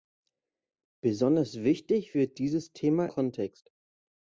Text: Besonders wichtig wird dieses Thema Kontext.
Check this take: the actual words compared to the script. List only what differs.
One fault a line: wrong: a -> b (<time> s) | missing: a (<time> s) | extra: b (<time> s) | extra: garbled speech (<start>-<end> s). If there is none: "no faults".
no faults